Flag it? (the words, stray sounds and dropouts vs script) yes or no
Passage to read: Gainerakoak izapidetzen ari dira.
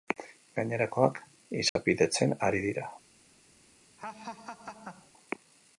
yes